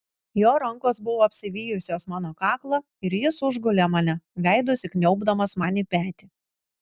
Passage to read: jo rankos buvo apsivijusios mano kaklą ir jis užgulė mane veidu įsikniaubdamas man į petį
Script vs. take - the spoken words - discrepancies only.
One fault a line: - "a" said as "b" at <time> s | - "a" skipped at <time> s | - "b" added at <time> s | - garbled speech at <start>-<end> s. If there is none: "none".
none